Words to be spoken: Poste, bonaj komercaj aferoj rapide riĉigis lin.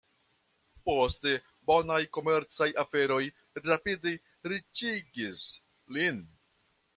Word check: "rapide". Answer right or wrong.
right